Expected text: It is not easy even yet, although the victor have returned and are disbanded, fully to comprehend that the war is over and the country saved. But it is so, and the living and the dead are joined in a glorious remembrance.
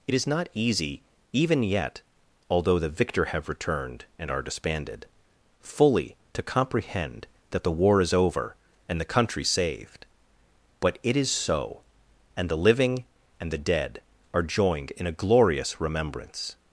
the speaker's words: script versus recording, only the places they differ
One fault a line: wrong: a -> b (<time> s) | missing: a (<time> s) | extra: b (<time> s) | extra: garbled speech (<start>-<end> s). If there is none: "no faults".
no faults